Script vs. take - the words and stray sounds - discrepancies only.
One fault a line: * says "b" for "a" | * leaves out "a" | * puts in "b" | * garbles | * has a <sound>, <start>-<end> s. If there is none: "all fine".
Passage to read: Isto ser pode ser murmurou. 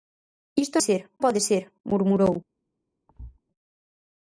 * has a thud, 3.1-3.4 s